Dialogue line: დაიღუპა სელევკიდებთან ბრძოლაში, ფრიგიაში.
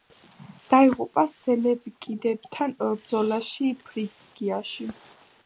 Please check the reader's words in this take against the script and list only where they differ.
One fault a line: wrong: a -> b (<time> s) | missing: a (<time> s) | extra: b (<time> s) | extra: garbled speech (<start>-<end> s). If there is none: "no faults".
no faults